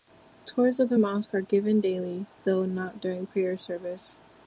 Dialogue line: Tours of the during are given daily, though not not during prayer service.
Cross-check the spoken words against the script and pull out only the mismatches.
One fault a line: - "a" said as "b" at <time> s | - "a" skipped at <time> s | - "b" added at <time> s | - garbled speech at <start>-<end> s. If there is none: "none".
- "during" said as "mosque" at 0.9 s
- "not" skipped at 3.0 s